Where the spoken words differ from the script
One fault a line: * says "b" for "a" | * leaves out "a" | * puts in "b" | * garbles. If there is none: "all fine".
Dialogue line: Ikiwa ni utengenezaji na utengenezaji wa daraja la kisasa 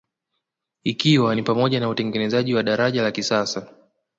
* says "pamoja" for "utengenezaji"